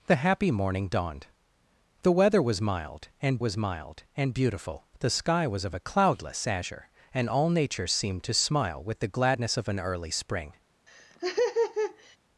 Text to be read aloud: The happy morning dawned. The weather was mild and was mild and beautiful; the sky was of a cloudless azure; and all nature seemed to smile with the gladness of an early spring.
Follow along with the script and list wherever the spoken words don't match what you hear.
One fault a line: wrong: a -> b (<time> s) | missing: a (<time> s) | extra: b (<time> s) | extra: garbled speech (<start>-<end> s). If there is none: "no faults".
no faults